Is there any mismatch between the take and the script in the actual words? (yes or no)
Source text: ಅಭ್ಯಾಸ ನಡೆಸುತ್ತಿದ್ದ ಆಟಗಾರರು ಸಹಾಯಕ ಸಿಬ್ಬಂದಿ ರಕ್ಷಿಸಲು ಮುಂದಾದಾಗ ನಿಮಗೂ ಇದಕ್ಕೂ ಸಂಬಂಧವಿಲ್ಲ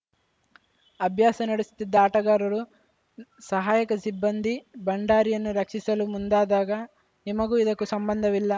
yes